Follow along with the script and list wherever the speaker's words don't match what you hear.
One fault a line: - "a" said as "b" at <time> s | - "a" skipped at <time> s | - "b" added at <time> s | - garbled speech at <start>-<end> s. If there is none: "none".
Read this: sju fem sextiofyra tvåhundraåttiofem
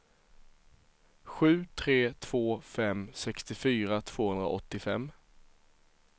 - "tre två" added at 1.7 s